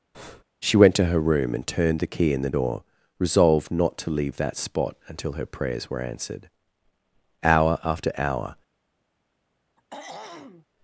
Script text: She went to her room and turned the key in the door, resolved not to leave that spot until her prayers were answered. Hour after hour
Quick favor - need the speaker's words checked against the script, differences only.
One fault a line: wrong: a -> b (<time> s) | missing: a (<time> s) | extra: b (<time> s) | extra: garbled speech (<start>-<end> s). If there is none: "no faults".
no faults